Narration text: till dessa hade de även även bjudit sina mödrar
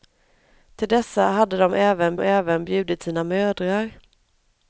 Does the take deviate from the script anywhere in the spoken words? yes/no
no